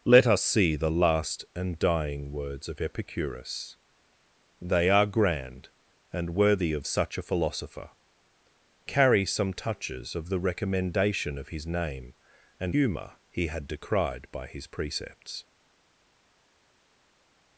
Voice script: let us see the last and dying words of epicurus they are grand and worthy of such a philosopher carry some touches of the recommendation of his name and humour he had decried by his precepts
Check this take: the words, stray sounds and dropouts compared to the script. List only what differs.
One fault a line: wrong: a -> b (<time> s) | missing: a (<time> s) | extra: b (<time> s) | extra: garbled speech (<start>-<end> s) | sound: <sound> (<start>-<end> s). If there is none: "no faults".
no faults